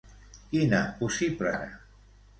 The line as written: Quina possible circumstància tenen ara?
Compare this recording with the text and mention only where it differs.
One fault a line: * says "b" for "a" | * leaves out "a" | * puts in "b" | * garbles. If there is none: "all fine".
* leaves out "circumstància tenen"